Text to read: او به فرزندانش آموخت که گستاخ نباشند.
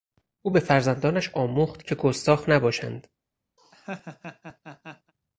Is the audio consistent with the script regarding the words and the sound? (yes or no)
no